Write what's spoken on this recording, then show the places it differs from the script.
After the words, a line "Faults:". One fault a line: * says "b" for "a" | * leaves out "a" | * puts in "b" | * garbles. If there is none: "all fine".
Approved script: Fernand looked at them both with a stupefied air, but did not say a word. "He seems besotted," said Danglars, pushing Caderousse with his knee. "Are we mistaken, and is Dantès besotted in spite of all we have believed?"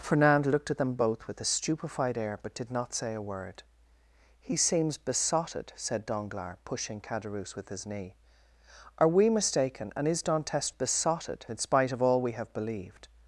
Fernand looked at them both with a stupefied air, but did not say a word. "He seems besotted," said Danglars, pushing Caderousse with his knee. "Are we mistaken, and is Dantès besotted in spite of all we have believed?"
Faults:
all fine